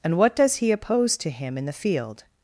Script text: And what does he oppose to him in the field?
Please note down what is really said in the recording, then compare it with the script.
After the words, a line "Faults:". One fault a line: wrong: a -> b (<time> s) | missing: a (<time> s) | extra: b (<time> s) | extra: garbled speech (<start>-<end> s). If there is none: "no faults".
And what does he oppose to him in the field?
Faults:
no faults